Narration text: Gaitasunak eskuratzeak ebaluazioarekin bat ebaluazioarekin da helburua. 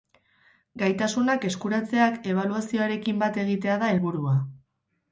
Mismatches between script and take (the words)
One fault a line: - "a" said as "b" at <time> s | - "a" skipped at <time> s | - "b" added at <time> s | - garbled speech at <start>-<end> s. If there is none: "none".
- "ebaluazioarekin" said as "egitea" at 3.5 s